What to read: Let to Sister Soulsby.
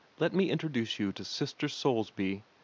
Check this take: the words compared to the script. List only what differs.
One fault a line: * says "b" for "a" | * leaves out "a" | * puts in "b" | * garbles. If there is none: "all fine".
* puts in "me introduce you"